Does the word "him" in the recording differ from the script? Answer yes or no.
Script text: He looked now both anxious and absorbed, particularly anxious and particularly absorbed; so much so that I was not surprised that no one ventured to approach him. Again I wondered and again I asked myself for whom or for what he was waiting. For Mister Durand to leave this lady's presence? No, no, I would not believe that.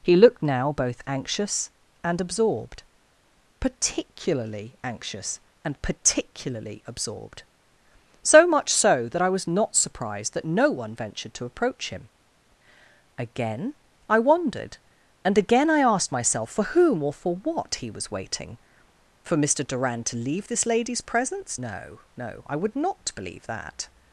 no